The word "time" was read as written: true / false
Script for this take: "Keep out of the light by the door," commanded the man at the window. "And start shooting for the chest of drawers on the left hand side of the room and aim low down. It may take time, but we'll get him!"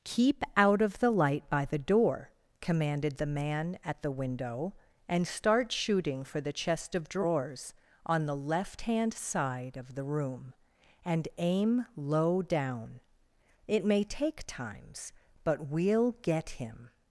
false